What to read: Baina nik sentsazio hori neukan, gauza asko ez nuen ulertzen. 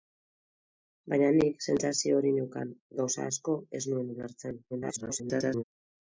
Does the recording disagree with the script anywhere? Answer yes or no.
yes